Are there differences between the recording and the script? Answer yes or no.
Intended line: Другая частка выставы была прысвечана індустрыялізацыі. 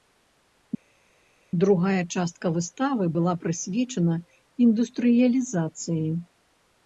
no